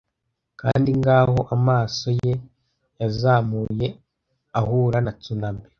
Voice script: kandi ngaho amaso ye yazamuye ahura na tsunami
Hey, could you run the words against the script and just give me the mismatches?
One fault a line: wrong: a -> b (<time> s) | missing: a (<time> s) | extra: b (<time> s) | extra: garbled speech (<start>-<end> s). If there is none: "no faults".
no faults